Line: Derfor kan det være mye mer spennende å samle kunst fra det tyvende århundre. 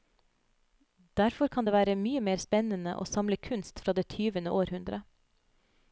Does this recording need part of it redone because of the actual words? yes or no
no